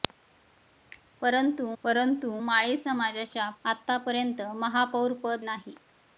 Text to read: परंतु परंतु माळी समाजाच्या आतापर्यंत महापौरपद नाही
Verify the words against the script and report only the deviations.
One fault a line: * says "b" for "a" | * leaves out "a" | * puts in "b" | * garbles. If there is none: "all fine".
all fine